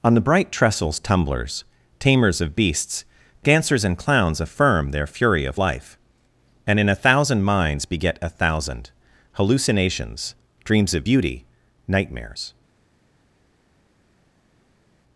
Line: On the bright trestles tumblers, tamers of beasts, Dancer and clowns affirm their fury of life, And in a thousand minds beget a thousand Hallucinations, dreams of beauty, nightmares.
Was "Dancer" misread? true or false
true